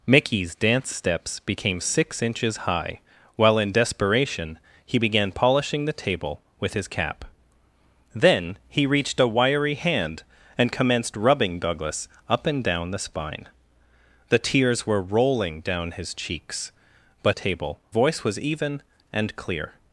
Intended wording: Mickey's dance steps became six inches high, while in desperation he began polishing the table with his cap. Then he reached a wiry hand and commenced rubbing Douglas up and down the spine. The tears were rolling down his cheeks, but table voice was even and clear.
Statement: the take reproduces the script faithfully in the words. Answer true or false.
true